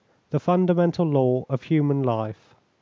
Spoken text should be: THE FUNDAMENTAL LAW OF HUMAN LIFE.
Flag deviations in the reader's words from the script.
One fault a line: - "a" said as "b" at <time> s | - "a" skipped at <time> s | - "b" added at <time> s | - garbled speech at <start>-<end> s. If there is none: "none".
none